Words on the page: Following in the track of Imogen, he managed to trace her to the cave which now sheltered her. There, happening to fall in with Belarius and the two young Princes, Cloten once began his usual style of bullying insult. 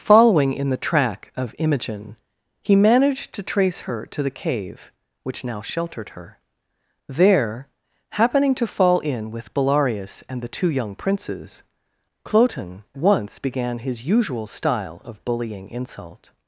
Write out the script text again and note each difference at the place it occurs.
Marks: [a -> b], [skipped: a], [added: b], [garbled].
Following in the track of Imogen, he managed to trace her to the cave which now sheltered her. There, happening to fall in with Belarius and the two young Princes, Cloten once began his usual style of bullying insult.